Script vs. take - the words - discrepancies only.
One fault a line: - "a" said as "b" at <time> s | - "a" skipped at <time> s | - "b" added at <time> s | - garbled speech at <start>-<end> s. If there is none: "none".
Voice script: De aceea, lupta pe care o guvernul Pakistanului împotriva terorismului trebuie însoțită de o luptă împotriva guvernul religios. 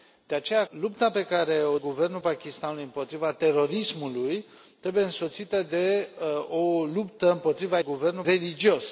none